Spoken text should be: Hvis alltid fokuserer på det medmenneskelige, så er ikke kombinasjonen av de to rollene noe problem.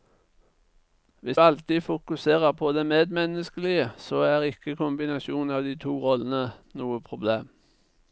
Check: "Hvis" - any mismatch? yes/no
no